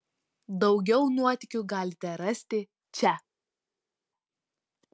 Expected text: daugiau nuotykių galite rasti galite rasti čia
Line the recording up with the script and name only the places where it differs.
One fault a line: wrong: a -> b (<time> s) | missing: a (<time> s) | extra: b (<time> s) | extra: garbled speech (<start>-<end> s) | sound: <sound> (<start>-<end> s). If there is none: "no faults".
missing: galite rasti (2.6 s)